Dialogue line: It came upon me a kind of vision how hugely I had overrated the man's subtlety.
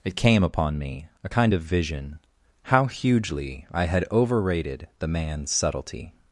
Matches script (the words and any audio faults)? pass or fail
pass